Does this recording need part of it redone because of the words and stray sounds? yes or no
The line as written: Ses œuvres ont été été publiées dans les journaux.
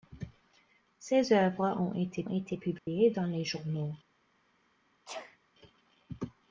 yes